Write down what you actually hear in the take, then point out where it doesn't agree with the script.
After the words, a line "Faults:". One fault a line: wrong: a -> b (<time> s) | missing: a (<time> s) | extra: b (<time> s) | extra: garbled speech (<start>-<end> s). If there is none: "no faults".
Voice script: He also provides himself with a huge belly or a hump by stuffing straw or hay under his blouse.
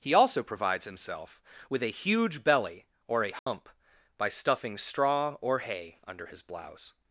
He also provides himself with a huge belly or a hump by stuffing straw or hay under his blouse.
Faults:
no faults